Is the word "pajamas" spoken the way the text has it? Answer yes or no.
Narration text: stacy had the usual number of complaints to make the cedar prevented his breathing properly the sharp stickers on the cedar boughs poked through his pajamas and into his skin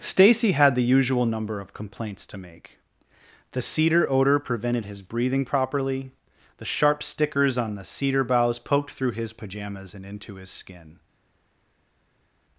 yes